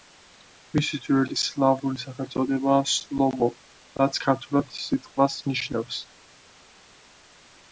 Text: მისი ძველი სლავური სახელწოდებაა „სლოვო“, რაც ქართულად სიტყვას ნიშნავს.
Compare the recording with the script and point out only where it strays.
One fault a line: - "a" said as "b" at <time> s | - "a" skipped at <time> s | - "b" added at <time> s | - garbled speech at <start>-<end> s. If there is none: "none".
none